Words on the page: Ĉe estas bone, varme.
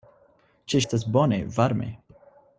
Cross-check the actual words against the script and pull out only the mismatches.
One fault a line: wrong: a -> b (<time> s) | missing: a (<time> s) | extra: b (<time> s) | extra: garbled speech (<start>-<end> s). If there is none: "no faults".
no faults